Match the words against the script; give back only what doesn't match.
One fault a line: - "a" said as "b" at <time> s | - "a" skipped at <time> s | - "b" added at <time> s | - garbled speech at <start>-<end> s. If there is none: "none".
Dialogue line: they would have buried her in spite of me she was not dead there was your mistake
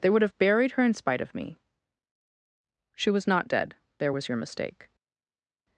none